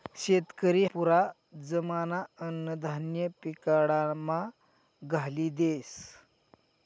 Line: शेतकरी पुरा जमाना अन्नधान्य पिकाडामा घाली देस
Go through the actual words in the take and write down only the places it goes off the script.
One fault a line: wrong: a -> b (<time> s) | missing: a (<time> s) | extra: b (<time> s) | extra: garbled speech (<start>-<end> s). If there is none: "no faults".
no faults